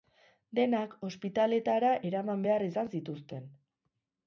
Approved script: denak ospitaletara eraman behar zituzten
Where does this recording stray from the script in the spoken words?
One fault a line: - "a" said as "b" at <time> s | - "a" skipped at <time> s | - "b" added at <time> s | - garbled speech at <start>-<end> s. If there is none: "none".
- "izan" added at 2.7 s